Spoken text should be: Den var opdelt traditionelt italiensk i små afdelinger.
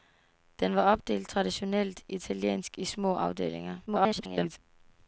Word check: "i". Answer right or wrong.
right